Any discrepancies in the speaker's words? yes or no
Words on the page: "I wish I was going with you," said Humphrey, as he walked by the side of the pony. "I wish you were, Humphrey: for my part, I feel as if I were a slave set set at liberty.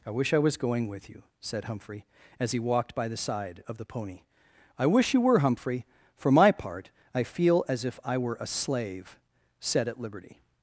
yes